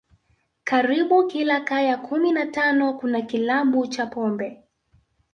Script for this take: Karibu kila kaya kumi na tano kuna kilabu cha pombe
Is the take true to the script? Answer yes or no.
yes